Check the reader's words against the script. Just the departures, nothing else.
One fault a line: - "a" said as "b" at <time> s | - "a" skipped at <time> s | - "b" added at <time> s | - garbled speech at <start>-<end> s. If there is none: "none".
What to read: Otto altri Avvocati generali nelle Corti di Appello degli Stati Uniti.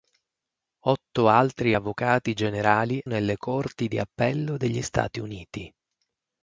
none